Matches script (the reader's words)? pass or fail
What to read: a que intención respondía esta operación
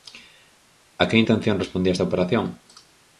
pass